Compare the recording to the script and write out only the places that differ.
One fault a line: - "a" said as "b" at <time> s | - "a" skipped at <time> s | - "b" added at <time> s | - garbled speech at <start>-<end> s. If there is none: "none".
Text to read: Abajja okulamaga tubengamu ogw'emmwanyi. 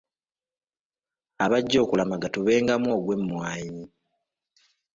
none